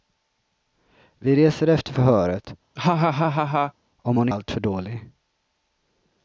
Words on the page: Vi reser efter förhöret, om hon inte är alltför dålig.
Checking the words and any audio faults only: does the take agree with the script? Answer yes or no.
no